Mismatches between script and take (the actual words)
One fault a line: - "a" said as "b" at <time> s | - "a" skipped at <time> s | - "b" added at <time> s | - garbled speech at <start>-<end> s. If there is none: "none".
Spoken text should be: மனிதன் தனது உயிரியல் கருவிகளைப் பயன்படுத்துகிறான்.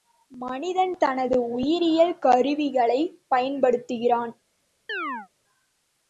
none